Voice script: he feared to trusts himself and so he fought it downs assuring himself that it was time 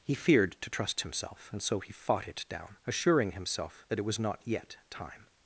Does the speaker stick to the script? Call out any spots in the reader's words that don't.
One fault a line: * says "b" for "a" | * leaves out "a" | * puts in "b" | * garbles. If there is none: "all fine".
* says "trust" for "trusts"
* says "down" for "downs"
* puts in "not yet"